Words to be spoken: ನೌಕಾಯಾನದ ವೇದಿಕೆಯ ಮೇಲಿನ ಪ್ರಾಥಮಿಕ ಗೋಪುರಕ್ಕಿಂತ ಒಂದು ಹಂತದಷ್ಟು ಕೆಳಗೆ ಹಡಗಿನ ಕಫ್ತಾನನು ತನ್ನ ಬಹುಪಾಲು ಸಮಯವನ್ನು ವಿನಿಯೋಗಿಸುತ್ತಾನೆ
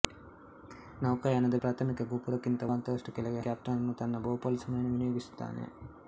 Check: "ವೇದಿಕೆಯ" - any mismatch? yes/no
yes